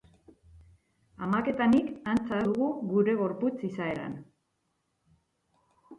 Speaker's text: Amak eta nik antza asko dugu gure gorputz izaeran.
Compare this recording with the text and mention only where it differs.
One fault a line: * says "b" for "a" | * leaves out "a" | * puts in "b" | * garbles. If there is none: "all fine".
* leaves out "asko"